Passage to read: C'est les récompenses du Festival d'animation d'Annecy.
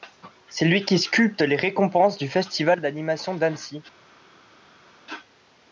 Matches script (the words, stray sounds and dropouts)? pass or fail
fail